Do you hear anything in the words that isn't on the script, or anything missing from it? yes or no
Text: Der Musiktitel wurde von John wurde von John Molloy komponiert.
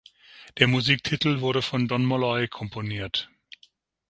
yes